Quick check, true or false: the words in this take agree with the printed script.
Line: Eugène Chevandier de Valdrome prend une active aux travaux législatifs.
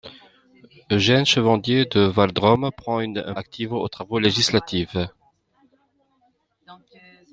true